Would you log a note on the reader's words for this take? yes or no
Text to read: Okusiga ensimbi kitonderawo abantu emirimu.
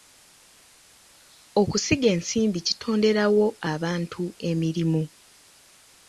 no